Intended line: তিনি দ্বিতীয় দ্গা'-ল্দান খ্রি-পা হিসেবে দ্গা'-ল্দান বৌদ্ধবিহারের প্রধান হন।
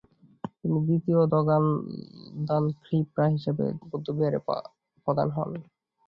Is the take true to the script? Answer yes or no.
no